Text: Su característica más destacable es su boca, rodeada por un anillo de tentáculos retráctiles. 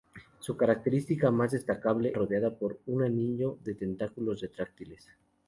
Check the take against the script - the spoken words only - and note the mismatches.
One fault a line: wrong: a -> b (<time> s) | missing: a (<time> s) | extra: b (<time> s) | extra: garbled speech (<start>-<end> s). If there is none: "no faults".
missing: es su boca (2.1 s)